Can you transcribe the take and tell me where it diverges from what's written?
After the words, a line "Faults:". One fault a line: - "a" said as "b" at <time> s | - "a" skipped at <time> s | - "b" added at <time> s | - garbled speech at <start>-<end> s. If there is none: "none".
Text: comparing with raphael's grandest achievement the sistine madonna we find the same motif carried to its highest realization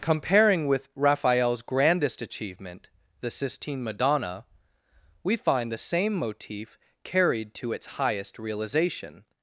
comparing with raphael's grandest achievement the sistine madonna we find the same motif carried to its highest realization
Faults:
none